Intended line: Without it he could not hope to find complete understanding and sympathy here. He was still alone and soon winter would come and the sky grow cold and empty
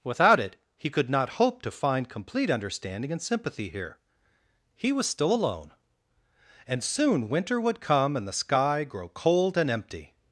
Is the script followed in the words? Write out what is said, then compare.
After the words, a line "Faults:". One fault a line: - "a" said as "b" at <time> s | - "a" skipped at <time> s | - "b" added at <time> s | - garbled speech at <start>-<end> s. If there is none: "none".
Without it he could not hope to find complete understanding and sympathy here. He was still alone and soon winter would come and the sky grow cold and empty
Faults:
none